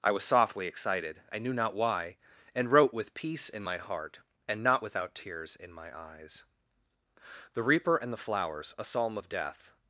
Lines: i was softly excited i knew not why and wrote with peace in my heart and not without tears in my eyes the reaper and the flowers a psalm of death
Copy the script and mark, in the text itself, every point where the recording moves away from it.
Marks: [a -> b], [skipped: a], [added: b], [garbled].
i was softly excited i knew not why and wrote with peace in my heart and not without tears in my eyes the reaper and the flowers a psalm of death